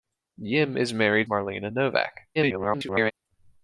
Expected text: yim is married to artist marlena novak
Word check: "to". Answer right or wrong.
wrong